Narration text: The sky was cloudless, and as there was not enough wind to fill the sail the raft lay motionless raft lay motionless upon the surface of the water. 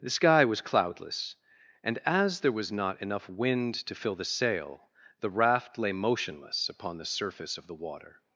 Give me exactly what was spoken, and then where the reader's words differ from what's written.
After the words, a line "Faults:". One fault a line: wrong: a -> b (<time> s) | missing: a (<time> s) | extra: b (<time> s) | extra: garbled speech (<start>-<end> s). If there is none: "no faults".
The sky was cloudless, and as there was not enough wind to fill the sail the raft lay motionless upon the surface of the water.
Faults:
missing: raft lay motionless (6.7 s)